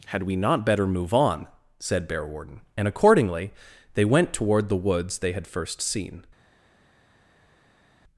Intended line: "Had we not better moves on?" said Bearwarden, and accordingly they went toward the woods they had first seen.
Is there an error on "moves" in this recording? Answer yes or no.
yes